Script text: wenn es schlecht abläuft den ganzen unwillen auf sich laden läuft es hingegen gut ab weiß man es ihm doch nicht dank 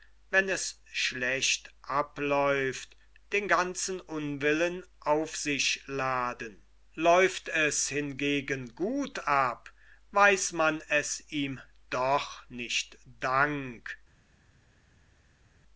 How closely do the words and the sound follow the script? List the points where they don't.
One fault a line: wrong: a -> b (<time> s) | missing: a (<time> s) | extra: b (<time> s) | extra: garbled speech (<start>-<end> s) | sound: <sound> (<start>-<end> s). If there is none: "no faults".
no faults